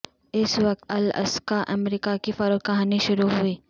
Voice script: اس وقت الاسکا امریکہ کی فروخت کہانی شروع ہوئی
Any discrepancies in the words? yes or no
no